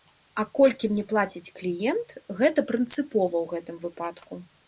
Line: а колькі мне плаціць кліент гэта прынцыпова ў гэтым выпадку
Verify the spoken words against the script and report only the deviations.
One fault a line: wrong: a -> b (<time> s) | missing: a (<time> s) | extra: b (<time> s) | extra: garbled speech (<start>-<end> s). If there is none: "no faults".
no faults